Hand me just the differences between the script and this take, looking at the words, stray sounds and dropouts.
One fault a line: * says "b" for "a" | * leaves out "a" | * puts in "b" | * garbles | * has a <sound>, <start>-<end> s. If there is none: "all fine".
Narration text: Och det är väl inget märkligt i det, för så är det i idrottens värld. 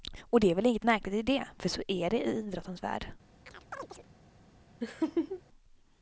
* has a chirp, 3.5-4.1 s
* has a laugh, 4.8-5.4 s